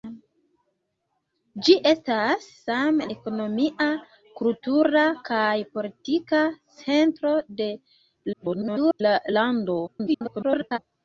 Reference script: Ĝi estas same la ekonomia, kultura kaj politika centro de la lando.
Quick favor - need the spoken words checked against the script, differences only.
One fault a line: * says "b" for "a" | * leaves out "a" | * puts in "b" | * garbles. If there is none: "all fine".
* leaves out "la"
* garbles
* garbles